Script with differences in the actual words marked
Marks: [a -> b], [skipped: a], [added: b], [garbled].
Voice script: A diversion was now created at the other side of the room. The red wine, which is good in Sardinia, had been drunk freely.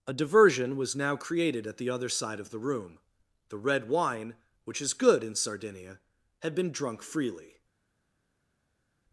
A diversion was now created at the other side of the room. The red wine, which is good in Sardinia, had been drunk freely.